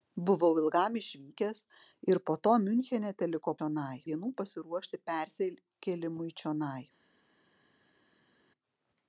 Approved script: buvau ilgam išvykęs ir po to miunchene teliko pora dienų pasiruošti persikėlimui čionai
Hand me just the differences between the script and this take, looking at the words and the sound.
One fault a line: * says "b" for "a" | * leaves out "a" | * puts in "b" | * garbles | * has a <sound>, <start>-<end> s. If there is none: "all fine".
* says "čionai" for "pora"